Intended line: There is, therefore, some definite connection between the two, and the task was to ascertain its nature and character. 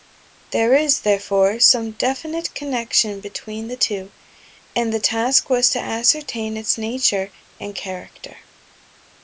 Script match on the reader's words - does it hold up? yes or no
yes